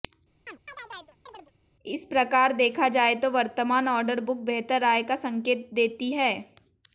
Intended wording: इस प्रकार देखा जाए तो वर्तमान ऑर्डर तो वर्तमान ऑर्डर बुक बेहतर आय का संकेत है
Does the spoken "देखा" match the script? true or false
true